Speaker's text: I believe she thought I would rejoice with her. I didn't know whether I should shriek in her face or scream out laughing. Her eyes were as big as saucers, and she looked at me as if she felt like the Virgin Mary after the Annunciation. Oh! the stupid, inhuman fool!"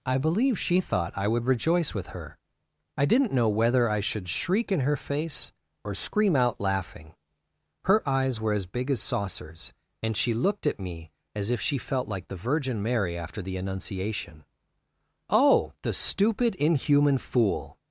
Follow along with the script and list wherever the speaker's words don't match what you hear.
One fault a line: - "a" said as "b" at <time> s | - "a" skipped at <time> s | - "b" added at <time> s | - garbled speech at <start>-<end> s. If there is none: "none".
none